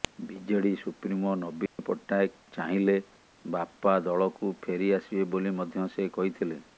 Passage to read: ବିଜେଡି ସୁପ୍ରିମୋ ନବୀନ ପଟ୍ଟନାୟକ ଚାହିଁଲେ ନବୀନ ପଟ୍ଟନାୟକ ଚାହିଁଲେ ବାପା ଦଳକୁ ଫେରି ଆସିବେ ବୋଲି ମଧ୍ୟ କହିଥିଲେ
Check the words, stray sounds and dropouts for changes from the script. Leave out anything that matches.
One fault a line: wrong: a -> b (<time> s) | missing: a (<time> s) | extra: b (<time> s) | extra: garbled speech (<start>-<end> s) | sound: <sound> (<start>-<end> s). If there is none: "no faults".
sound: dropout (1.7-1.8 s)
missing: ନବୀନ ପଟ୍ଟନାୟକ ଚାହିଁଲେ (3.0 s)
extra: ସେ (5.9 s)